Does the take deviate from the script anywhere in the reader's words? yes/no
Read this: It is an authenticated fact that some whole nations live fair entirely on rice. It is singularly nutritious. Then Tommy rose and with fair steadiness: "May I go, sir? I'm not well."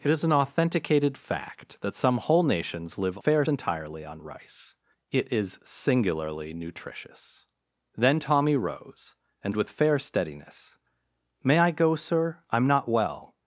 no